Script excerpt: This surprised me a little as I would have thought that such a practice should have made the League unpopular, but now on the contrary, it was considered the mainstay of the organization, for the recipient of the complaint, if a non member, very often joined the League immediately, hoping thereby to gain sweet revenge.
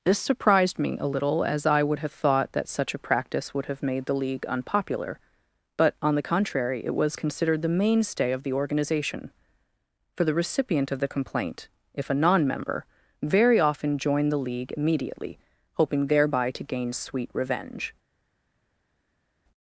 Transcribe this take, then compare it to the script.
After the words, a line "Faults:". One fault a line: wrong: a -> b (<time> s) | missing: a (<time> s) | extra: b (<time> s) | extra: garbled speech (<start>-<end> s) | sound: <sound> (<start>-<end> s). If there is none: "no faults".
This surprised me a little as I would have thought that such a practice would have made the League unpopular, but on the contrary, it was considered the mainstay of the organization, for the recipient of the complaint, if a non member, very often joined the League immediately, hoping thereby to gain sweet revenge.
Faults:
wrong: should -> would (3.5 s)
missing: now (5.9 s)